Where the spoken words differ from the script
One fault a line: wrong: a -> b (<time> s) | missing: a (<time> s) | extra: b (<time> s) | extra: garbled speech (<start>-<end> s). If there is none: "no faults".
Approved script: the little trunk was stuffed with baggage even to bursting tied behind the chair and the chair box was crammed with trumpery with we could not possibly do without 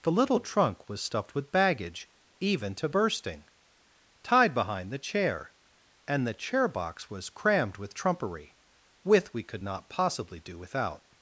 no faults